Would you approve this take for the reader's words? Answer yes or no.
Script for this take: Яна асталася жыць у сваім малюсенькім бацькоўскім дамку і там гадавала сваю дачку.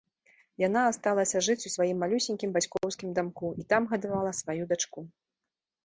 yes